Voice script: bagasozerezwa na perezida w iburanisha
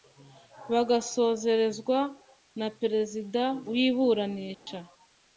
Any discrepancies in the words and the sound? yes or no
yes